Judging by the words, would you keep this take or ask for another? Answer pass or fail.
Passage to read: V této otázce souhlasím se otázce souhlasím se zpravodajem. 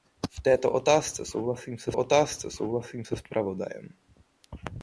pass